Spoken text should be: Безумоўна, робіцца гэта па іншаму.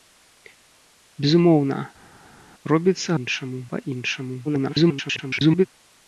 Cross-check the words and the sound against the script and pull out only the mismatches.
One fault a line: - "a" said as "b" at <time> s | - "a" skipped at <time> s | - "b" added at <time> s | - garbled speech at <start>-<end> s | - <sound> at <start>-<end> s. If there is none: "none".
- "гэта" said as "іншаму" at 3.2 s
- garbled speech at 4.4-5.7 s